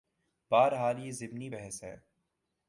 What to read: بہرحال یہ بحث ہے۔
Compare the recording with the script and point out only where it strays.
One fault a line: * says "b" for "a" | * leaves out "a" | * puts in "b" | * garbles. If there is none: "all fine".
* puts in "ضمنی"